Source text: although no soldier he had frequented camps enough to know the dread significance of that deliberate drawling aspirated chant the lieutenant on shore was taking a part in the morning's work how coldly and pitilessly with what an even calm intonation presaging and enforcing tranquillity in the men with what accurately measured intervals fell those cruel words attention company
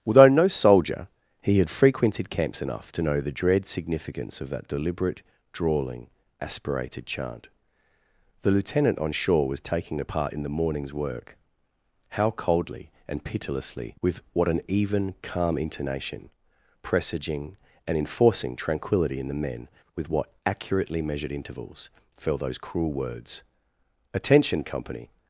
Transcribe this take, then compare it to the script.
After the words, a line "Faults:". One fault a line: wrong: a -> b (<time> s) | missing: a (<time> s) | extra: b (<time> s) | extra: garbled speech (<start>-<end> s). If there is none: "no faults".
although no soldier he had frequented camps enough to know the dread significance of that deliberate drawling aspirated chant the lieutenant on shore was taking a part in the morning's work how coldly and pitilessly with what an even calm intonation presaging and enforcing tranquillity in the men with what accurately measured intervals fell those cruel words attention company
Faults:
no faults